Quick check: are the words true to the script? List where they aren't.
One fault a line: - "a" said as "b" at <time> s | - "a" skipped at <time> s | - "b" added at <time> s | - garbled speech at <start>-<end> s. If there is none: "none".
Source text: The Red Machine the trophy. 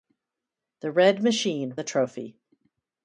none